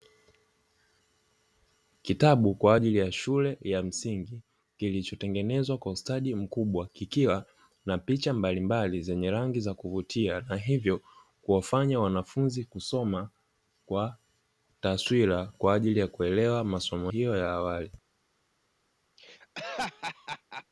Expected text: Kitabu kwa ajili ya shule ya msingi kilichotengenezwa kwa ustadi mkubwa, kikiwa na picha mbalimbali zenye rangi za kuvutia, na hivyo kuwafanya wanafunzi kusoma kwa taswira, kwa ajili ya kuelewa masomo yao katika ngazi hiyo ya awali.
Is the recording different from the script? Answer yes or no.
yes